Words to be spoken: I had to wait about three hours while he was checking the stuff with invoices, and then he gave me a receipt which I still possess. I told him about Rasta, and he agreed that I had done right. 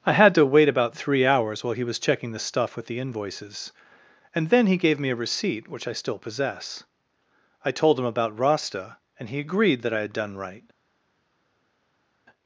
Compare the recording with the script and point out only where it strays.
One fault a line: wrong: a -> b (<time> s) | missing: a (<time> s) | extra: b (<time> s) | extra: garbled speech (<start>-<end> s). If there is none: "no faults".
extra: the (2.9 s)